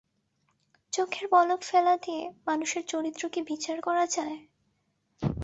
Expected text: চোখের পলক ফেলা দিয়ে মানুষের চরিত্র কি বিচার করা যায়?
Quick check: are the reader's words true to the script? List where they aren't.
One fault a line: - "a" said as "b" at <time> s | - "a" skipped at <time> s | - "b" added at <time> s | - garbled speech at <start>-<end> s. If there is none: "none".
none